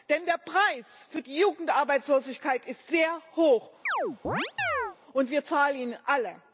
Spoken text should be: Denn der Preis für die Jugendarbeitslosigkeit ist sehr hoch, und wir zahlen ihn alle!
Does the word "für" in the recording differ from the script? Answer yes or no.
no